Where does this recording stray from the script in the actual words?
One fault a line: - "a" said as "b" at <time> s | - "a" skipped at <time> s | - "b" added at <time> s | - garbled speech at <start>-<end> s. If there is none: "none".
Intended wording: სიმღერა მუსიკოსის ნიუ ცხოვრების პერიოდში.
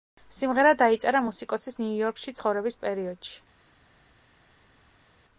- "დაიწერა" added at 0.8 s
- "იორკში" added at 2.0 s